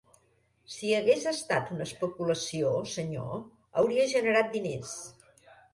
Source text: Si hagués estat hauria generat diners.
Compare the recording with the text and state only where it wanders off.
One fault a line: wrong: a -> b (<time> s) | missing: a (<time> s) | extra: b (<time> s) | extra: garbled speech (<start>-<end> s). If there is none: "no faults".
extra: una especulació senyor (1.8 s)